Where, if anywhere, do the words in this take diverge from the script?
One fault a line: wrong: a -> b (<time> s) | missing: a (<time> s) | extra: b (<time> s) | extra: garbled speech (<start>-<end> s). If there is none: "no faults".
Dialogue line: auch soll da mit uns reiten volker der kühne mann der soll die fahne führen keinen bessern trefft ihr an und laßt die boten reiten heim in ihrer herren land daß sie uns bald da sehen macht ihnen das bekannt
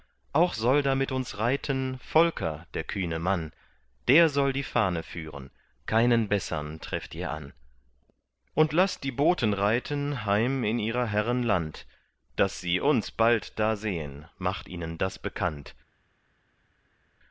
no faults